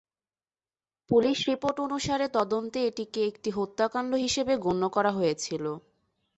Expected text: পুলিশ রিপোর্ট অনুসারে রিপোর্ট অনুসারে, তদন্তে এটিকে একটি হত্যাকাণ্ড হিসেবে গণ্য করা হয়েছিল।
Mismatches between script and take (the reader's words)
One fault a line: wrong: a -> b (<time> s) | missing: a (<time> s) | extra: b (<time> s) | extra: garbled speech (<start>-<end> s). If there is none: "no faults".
missing: রিপোর্ট অনুসারে (2.3 s)